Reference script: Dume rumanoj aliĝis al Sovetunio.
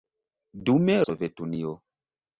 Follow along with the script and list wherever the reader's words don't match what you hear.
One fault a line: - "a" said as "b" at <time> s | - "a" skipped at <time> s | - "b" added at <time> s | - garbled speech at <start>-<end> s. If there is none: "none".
- "rumanoj aliĝis al" skipped at 0.9 s